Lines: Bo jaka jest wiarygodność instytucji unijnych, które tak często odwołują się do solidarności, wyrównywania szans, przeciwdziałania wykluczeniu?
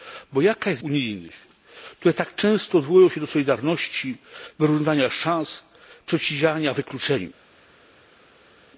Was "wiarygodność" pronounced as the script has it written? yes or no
no